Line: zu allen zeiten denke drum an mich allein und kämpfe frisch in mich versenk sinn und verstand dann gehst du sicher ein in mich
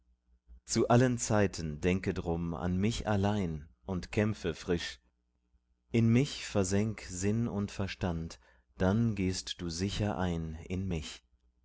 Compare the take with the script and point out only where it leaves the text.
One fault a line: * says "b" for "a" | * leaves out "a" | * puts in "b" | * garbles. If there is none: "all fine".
all fine